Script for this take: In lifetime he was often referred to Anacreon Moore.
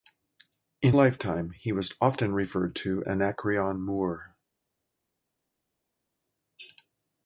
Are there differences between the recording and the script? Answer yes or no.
no